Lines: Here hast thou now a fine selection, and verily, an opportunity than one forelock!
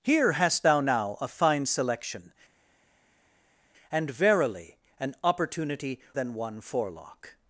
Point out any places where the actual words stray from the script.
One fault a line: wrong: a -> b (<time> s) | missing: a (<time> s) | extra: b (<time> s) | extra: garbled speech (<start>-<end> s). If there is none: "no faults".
no faults